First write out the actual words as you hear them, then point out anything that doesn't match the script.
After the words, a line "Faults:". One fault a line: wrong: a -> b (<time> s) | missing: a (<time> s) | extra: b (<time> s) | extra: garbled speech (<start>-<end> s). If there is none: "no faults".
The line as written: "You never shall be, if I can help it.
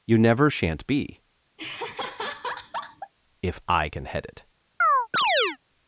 "You never shan't be, if I can head it.
Faults:
wrong: shall -> shan't (0.5 s)
wrong: help -> head (4.1 s)